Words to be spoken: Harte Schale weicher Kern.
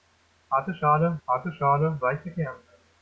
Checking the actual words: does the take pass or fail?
fail